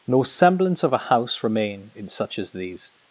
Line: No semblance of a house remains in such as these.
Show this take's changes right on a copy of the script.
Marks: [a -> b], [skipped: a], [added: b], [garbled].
No semblance of a house [remains -> remain] in such as these.